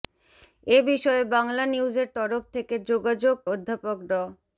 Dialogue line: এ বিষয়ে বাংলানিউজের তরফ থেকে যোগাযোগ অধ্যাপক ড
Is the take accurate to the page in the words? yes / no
yes